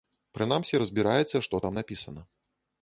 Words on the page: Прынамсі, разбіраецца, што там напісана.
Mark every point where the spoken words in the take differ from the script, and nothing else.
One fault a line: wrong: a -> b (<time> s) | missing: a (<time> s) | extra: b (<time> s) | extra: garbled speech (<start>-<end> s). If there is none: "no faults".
no faults